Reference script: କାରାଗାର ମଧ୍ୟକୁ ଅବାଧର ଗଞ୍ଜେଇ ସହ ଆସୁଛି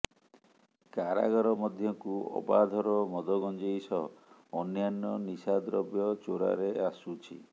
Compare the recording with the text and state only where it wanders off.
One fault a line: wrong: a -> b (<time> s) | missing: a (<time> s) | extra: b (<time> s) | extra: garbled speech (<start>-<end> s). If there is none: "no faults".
extra: ମଦ (3.1 s)
extra: ଅନ୍ୟାନ୍ୟ ନିଶାଦ୍ରବ୍ୟ ଚୋରାରେ (4.6 s)